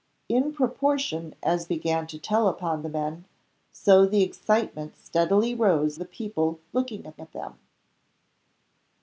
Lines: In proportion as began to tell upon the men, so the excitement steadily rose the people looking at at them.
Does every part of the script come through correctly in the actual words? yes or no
yes